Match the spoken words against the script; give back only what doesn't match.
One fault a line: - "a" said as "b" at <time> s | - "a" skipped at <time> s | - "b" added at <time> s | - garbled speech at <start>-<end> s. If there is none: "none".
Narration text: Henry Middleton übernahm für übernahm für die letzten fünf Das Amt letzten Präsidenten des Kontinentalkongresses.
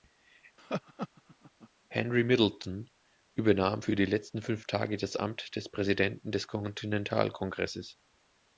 - "übernahm für" skipped at 4.0 s
- "Tage" added at 4.7 s
- "letzten" said as "des" at 5.6 s